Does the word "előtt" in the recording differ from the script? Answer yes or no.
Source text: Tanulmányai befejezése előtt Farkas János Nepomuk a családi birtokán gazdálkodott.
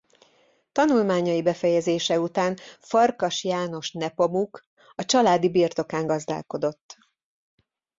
yes